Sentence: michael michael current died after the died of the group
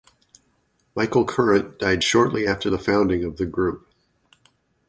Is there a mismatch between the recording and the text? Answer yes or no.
yes